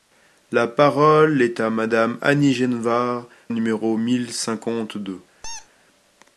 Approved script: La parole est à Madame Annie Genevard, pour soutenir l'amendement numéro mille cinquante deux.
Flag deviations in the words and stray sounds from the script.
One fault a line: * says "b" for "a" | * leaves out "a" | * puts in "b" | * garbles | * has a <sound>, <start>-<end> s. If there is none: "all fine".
* leaves out "pour soutenir l'amendement"
* has a squeak, 5.4-5.7 s